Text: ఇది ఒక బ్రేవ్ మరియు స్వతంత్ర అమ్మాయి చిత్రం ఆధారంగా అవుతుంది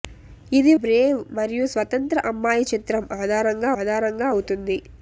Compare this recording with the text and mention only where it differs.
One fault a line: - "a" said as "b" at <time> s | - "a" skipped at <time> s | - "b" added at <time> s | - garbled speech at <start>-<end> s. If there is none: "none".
- "ఒక" skipped at 0.7 s
- "ఆధారంగా" added at 3.8 s